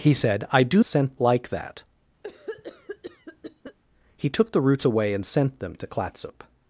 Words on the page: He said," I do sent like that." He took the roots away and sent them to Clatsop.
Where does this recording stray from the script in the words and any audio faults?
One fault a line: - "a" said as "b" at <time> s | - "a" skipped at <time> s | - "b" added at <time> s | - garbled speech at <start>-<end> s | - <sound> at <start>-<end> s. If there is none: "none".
- cough at 2.2-3.8 s